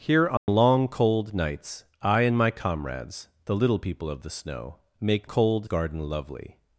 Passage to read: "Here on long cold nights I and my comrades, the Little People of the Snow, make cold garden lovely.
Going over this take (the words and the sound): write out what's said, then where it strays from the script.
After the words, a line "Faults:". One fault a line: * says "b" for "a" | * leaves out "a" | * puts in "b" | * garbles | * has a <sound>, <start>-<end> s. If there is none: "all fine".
"Here on long cold nights I and my comrades, the Little People of the Snow, make cold garden lovely.
Faults:
* has a dropout, 0.4-0.5 s